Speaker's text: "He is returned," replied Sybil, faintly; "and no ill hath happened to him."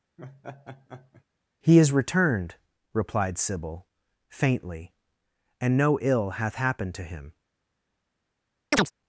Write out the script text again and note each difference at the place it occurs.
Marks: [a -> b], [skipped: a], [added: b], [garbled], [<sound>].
[laugh] "He is returned," replied Sybil, faintly; "and no ill hath happened to him." [chirp]